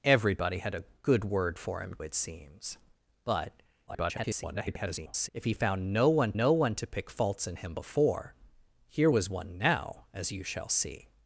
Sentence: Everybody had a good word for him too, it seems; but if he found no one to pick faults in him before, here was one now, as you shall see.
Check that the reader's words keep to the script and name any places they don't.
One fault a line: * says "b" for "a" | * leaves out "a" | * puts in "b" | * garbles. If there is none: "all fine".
* leaves out "too"
* garbles
* puts in "no one"